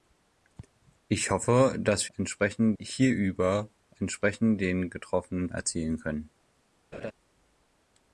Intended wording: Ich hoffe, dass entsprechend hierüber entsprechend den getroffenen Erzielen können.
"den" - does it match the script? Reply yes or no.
yes